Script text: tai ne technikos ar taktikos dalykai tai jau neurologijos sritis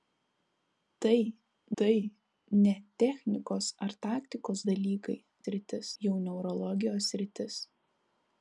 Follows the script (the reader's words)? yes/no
no